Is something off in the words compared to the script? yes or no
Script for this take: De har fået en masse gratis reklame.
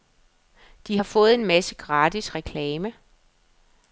no